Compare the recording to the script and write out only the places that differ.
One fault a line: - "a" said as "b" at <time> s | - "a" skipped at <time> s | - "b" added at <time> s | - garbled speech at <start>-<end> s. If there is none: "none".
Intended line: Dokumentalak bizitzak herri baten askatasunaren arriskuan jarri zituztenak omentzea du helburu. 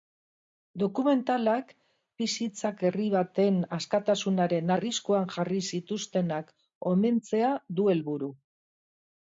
none